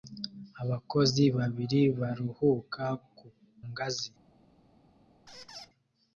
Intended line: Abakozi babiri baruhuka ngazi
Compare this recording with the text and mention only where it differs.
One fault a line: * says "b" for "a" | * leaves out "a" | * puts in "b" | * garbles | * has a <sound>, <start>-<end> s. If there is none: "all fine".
* has a squeak, 5.3-5.7 s